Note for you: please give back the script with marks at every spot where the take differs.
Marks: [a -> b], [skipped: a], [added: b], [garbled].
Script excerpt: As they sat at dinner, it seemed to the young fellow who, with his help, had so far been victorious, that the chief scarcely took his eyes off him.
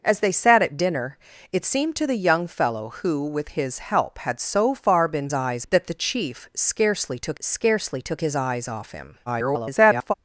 As they sat at dinner, it seemed to the young fellow who, with his help, had so far been [victorious, -> eyes] that the chief scarcely took [added: scarcely took] his eyes off him. [garbled]